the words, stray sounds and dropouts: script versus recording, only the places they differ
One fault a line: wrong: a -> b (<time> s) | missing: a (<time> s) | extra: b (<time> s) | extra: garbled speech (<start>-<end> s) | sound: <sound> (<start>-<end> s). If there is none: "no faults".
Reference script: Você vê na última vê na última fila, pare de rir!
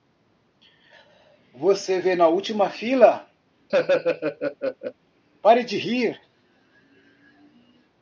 missing: vê na última (2.7 s)
sound: laugh (3.7-4.9 s)